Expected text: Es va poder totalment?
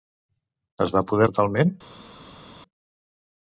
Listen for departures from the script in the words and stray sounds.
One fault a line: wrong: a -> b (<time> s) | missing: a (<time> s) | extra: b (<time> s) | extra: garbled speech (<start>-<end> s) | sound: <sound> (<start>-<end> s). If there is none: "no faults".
no faults